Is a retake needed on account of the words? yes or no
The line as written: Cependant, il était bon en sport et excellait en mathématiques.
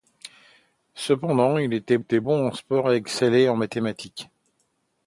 yes